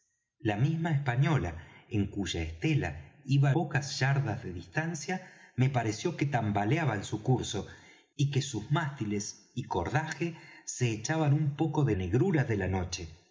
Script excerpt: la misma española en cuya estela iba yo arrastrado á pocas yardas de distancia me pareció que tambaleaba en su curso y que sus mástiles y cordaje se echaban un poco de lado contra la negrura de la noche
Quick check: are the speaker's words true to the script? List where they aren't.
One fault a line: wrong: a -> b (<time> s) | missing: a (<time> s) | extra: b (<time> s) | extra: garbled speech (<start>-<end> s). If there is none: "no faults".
missing: yo arrastrado á (3.5 s)
missing: lado contra la (12.0 s)